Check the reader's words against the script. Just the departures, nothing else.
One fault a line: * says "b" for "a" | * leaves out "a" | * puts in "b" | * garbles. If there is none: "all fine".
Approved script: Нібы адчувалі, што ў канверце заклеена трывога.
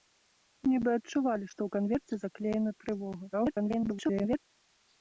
* garbles